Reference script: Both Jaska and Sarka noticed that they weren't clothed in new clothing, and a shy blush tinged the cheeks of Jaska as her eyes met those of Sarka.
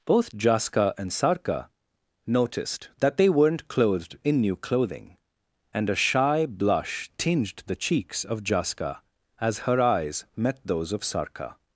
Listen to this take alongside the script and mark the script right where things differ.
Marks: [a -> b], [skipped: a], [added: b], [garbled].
Both Jaska and Sarka noticed that they weren't clothed in new clothing, and a shy blush tinged the cheeks of Jaska as her eyes met those of Sarka.